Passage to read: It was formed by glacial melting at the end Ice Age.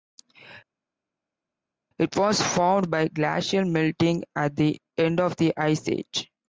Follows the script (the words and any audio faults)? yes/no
no